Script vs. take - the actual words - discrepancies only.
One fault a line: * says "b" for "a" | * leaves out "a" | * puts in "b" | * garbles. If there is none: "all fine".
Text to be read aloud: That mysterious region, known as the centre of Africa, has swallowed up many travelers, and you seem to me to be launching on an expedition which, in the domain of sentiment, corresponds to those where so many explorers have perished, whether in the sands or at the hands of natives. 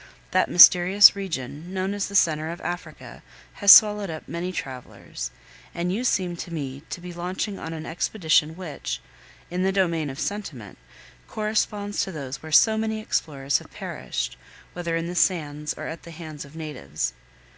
all fine